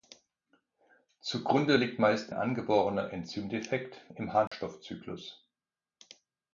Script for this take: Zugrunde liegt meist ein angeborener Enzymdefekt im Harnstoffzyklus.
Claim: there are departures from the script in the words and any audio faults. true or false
true